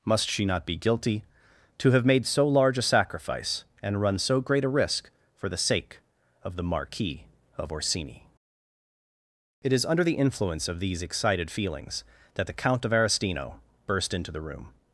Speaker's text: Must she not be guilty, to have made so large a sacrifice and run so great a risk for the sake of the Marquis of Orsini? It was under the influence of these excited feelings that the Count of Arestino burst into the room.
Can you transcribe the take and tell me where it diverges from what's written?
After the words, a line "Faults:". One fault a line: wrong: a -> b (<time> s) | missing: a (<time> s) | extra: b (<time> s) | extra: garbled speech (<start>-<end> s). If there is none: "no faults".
Must she not be guilty, to have made so large a sacrifice and run so great a risk for the sake of the Marquis of Orsini? It is under the influence of these excited feelings that the Count of Arestino burst into the room.
Faults:
wrong: was -> is (9.7 s)